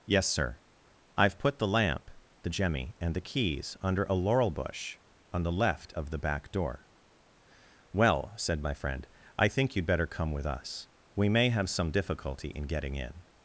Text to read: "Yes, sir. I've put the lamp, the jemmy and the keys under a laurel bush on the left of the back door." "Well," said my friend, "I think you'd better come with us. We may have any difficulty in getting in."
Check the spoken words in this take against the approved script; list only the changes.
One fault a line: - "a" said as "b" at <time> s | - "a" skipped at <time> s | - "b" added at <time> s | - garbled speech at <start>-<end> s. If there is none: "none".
- "any" said as "some" at 11.7 s